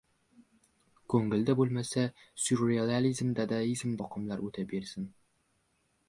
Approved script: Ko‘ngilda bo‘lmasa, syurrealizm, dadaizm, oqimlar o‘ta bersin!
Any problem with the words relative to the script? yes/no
no